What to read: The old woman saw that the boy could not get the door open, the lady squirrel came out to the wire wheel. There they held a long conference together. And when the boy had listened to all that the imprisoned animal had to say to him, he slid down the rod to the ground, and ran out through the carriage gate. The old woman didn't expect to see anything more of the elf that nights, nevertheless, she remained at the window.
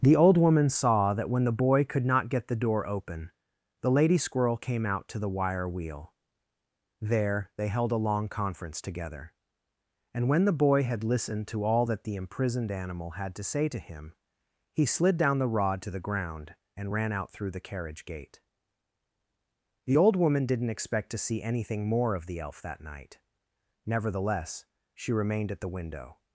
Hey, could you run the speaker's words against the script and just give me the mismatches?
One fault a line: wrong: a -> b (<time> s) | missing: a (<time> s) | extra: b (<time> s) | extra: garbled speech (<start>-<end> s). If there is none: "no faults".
extra: when (1.3 s)
wrong: nights -> night (22.8 s)